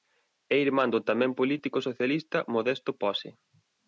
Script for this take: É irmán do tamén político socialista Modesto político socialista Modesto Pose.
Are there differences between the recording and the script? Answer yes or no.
yes